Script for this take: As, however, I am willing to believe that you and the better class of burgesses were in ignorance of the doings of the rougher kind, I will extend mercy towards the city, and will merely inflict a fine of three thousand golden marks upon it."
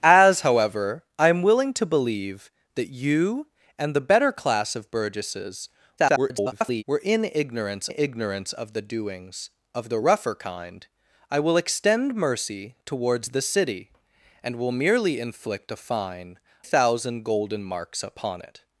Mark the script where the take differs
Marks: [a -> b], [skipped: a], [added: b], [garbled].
As, however, I am willing to believe that you and the better class of burgesses [garbled] were in ignorance [added: ignorance] of the doings of the rougher kind, I will extend mercy towards the city, and will merely inflict a fine [skipped: of three] thousand golden marks upon it."